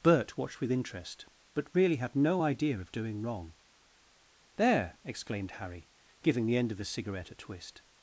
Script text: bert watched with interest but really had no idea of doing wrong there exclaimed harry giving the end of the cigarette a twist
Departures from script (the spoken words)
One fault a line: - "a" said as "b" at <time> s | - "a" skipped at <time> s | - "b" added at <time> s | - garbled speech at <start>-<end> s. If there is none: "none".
none